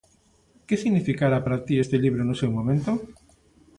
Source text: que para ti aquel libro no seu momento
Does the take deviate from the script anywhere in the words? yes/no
yes